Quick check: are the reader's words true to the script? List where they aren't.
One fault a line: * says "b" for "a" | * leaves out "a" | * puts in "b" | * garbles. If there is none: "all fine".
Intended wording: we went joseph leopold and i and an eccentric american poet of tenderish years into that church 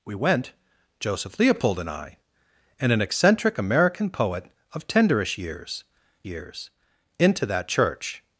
* puts in "years"